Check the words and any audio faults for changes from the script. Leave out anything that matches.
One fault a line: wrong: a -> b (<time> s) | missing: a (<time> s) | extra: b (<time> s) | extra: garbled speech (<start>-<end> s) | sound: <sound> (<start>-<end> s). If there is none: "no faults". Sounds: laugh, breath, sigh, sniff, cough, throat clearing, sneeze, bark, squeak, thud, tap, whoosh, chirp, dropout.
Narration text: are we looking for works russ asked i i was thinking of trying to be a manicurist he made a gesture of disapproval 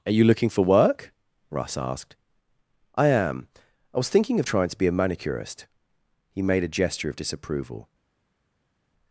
wrong: we -> you (0.1 s)
wrong: works -> work (0.7 s)
extra: am (3.0 s)